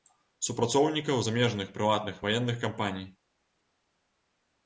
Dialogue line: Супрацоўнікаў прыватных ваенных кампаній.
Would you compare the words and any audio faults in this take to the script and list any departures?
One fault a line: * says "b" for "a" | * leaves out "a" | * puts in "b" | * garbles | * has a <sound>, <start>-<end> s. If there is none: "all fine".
* puts in "замежных"